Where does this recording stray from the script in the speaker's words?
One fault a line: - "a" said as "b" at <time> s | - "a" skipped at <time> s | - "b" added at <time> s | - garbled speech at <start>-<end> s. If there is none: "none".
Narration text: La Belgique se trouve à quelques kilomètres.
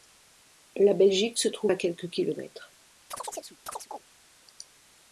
none